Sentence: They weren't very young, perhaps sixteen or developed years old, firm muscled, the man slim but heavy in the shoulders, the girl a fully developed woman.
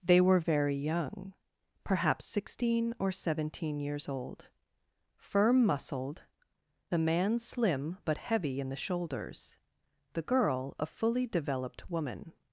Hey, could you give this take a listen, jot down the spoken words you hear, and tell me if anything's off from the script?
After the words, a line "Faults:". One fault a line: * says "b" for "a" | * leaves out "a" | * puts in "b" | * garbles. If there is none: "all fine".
They were very young, perhaps sixteen or seventeen years old, firm muscled, the man slim but heavy in the shoulders, the girl a fully developed woman.
Faults:
* says "were" for "weren't"
* says "seventeen" for "developed"